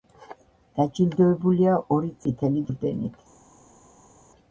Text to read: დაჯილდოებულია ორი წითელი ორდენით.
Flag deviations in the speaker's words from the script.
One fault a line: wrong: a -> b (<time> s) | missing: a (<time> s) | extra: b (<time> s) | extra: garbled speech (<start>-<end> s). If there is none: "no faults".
no faults